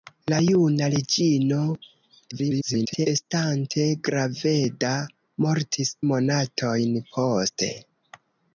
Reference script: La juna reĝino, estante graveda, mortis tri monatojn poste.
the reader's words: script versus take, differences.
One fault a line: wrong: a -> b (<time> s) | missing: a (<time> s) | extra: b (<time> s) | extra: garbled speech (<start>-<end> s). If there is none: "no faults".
extra: garbled speech (2.3-3.1 s)
missing: tri (6.0 s)